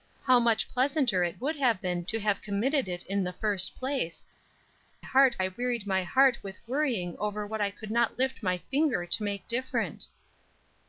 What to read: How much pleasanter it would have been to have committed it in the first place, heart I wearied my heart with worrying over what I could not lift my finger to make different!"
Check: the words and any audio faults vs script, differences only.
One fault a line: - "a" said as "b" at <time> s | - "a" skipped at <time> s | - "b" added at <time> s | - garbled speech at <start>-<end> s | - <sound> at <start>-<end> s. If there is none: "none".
none